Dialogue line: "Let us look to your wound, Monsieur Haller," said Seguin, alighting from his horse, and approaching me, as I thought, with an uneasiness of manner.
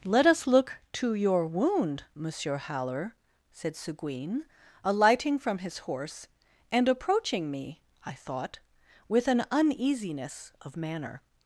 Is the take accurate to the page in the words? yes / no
no